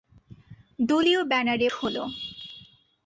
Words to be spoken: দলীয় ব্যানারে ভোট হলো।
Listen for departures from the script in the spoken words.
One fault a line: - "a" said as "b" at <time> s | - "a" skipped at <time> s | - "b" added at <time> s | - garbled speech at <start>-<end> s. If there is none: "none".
- "ভোট" skipped at 1.7 s